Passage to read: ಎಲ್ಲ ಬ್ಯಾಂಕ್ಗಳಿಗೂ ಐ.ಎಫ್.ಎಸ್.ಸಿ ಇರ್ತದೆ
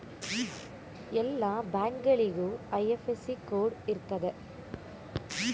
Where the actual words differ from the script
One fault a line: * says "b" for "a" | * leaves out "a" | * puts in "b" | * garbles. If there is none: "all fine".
* puts in "ಕೋಡ್"